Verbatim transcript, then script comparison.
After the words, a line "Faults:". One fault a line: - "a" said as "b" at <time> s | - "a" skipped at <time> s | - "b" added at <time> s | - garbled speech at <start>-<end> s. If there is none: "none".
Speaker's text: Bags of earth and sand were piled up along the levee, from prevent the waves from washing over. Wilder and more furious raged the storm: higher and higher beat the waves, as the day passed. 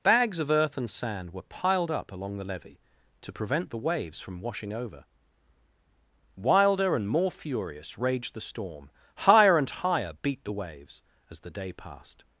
Bags of earth and sand were piled up along the levee, to prevent the waves from washing over. Wilder and more furious raged the storm: higher and higher beat the waves, as the day passed.
Faults:
- "from" said as "to" at 3.2 s